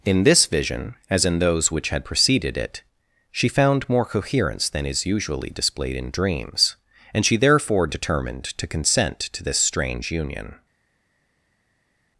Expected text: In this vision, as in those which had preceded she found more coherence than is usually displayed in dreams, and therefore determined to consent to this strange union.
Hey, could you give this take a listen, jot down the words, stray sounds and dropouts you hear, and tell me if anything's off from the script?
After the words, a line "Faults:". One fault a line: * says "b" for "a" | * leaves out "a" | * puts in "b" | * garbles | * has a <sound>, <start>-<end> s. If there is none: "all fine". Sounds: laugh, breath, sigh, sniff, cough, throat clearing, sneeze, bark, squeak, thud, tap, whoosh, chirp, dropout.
In this vision, as in those which had preceded it, she found more coherence than is usually displayed in dreams, and she therefore determined to consent to this strange union.
Faults:
* puts in "it"
* puts in "she"